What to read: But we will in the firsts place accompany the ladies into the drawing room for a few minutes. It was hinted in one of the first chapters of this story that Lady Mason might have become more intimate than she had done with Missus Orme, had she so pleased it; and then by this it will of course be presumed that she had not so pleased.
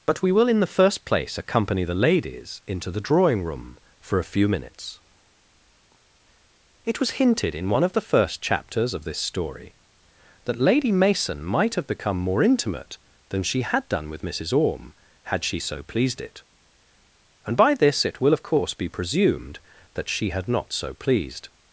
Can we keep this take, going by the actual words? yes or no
no